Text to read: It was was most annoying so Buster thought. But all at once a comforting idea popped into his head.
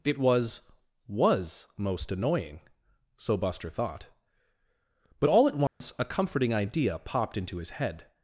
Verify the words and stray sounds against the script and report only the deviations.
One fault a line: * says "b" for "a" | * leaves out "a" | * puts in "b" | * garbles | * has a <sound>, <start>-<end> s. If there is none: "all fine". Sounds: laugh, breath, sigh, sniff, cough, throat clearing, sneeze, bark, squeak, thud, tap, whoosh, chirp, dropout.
* has a dropout, 5.7-5.8 s